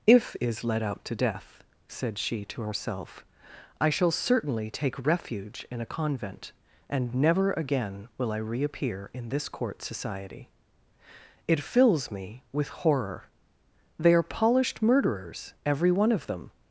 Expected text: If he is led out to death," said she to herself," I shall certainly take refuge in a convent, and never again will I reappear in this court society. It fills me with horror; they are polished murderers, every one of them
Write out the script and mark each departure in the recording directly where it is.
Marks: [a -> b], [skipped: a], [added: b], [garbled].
If [skipped: he] is led out to death," said she to herself," I shall certainly take refuge in a convent, and never again will I reappear in this court society. It fills me with horror; they are polished murderers, every one of them